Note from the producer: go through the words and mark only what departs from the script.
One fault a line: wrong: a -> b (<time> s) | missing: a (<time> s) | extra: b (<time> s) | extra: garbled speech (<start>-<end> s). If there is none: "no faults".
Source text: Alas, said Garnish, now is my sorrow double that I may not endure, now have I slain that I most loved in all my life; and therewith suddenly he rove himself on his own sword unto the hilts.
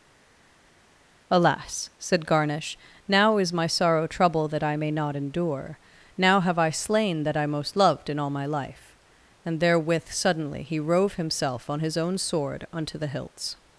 wrong: double -> trouble (4.1 s)